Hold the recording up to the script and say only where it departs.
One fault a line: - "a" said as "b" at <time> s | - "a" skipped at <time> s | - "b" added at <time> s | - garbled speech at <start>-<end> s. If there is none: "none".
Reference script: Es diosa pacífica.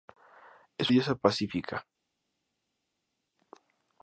none